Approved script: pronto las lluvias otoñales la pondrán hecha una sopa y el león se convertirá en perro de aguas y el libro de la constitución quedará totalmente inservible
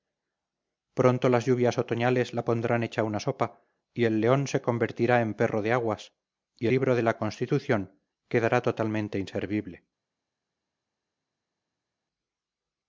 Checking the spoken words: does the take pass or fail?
fail